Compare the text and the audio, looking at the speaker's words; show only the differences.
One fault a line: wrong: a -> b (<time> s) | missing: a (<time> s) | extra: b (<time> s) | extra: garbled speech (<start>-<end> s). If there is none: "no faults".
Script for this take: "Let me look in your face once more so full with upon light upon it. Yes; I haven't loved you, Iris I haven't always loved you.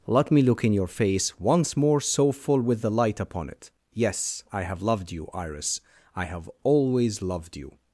wrong: upon -> the (2.8 s)
wrong: haven't -> have (4.6 s)
wrong: haven't -> have (6.2 s)